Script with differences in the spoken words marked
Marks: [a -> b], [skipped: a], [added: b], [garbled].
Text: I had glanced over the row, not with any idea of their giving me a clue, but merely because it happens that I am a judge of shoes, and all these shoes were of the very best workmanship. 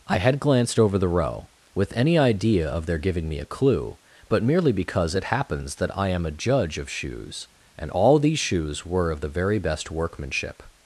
I had glanced over the row, [skipped: not] with any idea of their giving me a clue, but merely because it happens that I am a judge of shoes, and all these shoes were of the very best workmanship.